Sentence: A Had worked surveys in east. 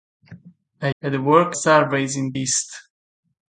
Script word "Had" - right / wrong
right